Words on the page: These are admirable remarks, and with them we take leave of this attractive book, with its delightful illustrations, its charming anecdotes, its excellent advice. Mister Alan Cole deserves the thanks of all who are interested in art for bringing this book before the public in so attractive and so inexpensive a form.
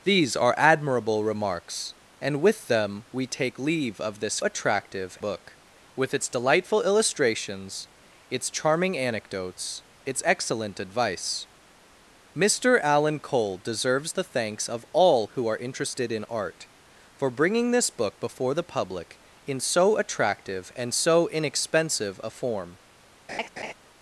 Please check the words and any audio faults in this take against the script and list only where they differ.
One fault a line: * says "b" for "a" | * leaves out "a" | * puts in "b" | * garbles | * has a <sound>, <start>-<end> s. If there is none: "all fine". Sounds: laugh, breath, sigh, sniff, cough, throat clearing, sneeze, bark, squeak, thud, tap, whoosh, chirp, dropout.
* has a laugh, 23.3-23.7 s